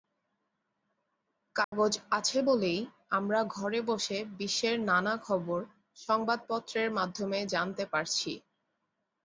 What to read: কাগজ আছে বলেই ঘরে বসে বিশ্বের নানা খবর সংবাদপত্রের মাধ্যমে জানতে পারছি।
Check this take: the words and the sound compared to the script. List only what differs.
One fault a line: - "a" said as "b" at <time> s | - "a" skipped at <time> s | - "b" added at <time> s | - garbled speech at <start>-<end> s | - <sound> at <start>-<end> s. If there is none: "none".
- dropout at 1.6-1.7 s
- "আমরা" added at 3.1 s